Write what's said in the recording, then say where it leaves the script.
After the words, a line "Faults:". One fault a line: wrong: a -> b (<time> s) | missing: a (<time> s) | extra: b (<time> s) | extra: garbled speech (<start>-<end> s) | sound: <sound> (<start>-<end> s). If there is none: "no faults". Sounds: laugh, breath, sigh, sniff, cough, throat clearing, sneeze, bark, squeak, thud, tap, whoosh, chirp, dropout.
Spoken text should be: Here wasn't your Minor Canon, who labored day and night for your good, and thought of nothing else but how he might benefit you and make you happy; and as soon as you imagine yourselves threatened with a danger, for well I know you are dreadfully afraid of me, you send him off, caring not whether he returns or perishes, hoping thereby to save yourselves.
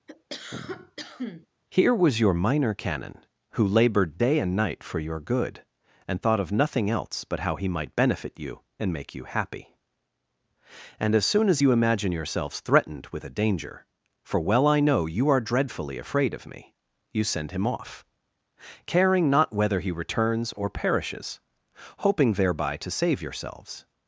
Here was your Minor Canon, who labored day and night for your good, and thought of nothing else but how he might benefit you and make you happy; and as soon as you imagine yourselves threatened with a danger, for well I know you are dreadfully afraid of me, you send him off, caring not whether he returns or perishes, hoping thereby to save yourselves.
Faults:
sound: cough (0.1-1.5 s)
wrong: wasn't -> was (1.9 s)